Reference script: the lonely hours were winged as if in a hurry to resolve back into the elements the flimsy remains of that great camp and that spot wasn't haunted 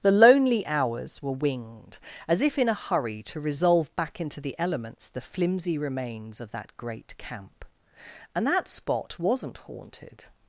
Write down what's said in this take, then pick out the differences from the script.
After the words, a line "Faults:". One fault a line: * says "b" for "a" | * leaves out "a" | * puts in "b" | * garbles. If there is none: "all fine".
the lonely hours were winged as if in a hurry to resolve back into the elements the flimsy remains of that great camp and that spot wasn't haunted
Faults:
all fine